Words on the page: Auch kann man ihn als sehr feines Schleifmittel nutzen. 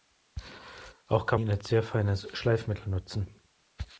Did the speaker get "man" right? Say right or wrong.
wrong